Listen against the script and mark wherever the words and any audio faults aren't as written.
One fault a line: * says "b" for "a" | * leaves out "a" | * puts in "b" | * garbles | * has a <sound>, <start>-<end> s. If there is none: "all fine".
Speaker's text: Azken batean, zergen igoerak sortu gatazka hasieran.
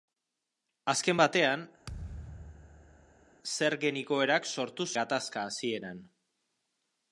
* has a thud, 1.9-3.3 s